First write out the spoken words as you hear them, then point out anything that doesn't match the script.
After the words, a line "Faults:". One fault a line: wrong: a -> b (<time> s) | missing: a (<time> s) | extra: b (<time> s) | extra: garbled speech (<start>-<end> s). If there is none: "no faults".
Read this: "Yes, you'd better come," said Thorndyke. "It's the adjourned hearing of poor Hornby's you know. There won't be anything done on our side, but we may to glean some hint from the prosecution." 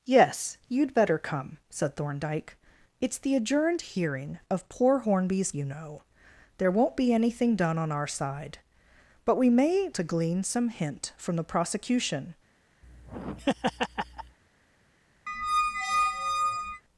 "Yes, you'd better come," said Thorndyke. "It's the adjourned hearing of poor Hornby's you know. There won't be anything done on our side, but we may to glean some hint from the prosecution."
Faults:
no faults